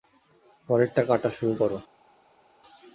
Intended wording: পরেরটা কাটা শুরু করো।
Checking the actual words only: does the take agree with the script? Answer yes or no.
yes